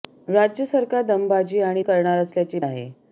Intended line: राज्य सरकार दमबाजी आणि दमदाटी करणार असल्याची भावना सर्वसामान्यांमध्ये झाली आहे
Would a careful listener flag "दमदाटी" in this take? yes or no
yes